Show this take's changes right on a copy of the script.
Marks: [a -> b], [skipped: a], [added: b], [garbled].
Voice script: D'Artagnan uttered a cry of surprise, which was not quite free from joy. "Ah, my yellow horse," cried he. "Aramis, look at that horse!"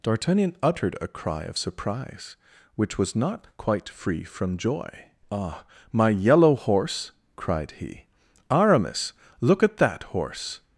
D'Artagnan uttered a cry of surprise, which was not quite free from joy. "Ah, my yellow horse," cried he. "Aramis, look at that horse!"